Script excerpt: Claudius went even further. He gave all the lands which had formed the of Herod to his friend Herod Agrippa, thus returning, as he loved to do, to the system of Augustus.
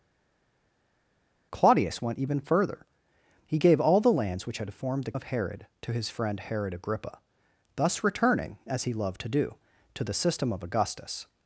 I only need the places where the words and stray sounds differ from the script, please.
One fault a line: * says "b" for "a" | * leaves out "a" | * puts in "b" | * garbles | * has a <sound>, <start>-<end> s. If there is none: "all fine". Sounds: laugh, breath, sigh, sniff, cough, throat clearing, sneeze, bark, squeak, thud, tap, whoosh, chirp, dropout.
all fine